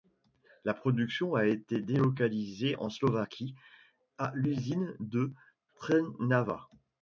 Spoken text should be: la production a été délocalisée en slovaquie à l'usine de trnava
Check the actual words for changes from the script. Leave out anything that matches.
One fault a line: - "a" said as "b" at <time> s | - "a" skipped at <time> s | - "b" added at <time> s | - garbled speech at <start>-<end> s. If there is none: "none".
none